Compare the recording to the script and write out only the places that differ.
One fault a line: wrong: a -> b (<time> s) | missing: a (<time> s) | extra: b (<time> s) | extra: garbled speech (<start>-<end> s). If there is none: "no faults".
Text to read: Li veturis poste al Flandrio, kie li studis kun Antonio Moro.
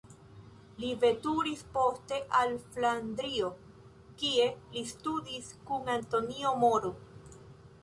no faults